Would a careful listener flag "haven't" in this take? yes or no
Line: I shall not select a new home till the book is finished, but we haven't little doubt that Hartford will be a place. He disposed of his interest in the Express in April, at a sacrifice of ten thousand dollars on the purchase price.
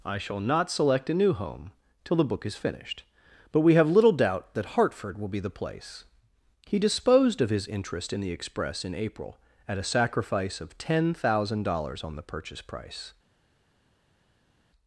yes